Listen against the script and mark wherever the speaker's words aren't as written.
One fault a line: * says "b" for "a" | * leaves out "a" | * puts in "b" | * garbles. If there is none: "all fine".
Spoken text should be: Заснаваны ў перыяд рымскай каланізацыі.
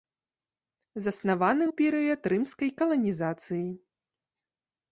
all fine